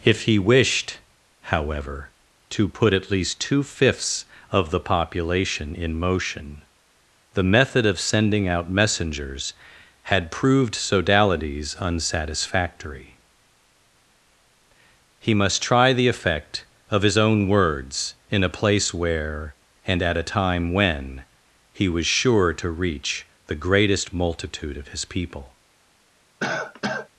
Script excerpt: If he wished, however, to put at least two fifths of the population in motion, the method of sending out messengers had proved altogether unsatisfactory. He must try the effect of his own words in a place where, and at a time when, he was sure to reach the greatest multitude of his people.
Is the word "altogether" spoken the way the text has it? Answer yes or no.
no